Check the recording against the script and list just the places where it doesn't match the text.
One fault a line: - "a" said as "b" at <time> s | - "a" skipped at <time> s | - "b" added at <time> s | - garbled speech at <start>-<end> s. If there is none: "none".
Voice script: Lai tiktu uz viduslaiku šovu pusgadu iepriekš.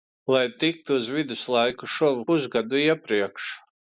none